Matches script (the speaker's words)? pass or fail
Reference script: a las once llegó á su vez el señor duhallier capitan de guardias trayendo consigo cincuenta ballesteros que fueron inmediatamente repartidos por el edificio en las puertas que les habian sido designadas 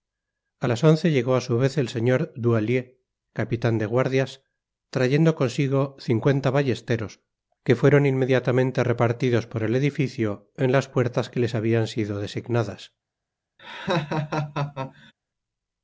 pass